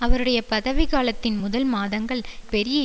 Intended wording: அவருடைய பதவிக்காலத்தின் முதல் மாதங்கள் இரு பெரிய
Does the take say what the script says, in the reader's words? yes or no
no